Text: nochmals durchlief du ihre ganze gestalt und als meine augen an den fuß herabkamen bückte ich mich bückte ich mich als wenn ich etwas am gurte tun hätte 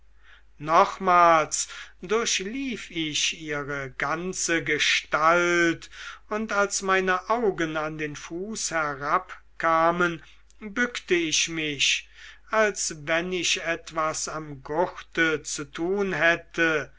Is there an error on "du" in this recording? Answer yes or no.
yes